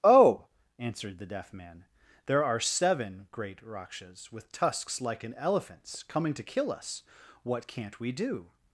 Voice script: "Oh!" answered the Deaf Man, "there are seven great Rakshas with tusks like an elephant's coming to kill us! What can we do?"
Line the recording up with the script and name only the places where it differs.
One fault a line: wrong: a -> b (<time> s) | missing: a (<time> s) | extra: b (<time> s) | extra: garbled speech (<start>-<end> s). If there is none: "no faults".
wrong: can -> can't (7.7 s)